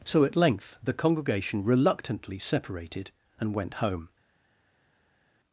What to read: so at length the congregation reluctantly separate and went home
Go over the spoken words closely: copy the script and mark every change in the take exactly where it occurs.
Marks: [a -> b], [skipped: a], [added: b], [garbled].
so at length the congregation reluctantly [separate -> separated] and went home